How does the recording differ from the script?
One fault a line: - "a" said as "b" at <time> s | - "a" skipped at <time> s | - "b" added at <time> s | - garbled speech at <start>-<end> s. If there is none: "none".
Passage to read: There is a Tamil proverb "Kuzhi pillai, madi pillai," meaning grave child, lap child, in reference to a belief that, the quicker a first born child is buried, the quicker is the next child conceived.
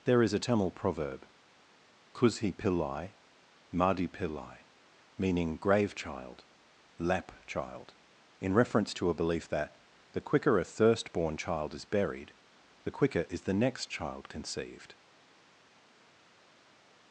- "first" said as "thirst" at 10.6 s